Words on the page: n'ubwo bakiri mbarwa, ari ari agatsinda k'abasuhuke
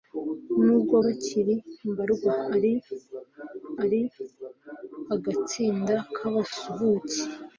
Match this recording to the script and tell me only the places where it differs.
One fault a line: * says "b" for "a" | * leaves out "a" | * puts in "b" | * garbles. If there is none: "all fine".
all fine